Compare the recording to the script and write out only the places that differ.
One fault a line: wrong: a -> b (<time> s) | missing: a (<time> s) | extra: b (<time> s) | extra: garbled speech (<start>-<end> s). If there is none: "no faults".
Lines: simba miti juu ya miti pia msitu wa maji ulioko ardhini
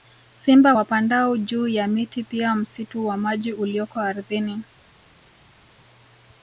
wrong: miti -> wapandao (0.7 s)